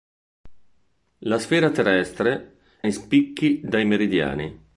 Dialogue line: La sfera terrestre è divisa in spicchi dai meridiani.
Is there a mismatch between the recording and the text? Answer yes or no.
yes